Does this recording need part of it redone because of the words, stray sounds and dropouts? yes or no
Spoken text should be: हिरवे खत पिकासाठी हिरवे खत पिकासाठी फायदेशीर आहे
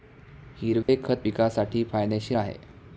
yes